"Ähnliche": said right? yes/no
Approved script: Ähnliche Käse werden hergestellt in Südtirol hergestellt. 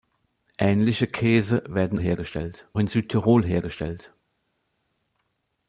yes